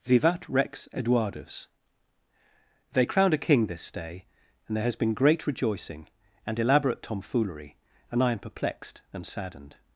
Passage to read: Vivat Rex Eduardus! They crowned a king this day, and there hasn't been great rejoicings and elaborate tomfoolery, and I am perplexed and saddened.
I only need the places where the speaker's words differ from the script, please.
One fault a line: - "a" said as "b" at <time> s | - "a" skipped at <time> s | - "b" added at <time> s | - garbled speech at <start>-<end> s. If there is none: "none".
- "hasn't" said as "has" at 4.8 s
- "rejoicings" said as "rejoicing" at 5.5 s